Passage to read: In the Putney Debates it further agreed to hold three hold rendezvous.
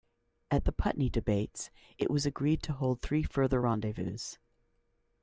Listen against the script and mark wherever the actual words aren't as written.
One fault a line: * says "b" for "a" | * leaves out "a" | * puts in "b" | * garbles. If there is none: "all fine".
* says "At" for "In"
* says "was" for "further"
* says "further" for "hold"